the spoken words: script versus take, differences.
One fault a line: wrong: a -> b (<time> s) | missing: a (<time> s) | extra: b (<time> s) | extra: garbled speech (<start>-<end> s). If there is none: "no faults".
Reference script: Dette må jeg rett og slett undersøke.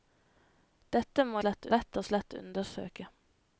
wrong: jeg -> slett (1.4 s)